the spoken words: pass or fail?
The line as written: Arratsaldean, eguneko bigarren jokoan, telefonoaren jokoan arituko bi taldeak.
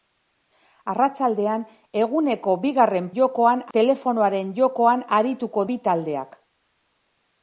pass